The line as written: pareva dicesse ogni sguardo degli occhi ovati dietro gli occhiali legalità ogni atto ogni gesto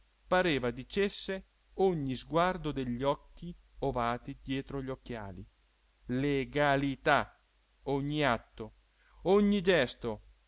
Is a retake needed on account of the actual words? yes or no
no